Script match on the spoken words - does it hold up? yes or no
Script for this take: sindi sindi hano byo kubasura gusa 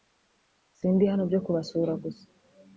no